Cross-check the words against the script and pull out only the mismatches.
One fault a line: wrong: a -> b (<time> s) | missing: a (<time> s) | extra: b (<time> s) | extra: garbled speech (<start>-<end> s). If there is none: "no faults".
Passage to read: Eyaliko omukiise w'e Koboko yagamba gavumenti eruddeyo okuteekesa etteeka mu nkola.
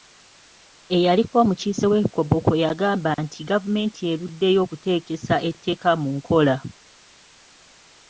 extra: nti (3.2 s)